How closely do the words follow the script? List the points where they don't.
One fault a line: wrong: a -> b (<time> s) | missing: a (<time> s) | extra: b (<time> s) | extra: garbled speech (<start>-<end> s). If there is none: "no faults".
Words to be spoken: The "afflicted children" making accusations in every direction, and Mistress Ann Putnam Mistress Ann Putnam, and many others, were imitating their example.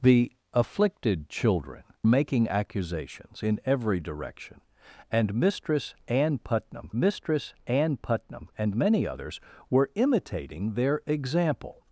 no faults